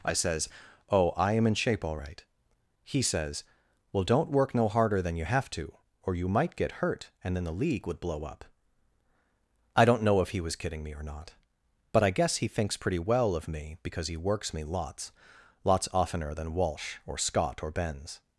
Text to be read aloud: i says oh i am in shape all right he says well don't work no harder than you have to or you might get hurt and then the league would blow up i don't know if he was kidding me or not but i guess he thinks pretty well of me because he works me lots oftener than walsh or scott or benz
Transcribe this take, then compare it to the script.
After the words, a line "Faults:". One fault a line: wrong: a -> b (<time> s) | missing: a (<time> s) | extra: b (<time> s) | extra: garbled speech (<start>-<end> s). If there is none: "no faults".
i says oh i am in shape all right he says well don't work no harder than you have to or you might get hurt and then the league would blow up i don't know if he was kidding me or not but i guess he thinks pretty well of me because he works me lots lots oftener than walsh or scott or benz
Faults:
extra: lots (15.6 s)